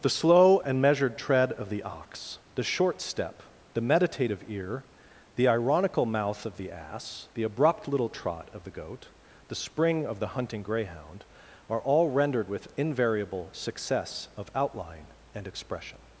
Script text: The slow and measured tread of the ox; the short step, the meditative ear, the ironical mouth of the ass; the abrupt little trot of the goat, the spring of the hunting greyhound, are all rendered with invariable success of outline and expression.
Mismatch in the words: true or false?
false